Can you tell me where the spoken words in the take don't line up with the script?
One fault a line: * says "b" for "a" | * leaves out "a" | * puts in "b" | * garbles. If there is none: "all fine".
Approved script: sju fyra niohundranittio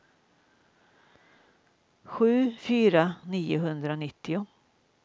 all fine